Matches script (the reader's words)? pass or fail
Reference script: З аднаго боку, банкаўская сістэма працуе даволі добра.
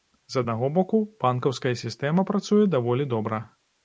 pass